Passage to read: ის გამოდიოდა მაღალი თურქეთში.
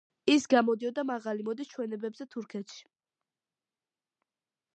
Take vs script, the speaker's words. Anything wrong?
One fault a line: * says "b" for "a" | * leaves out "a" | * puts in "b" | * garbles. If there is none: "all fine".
* puts in "მოდის ჩვენებებზე"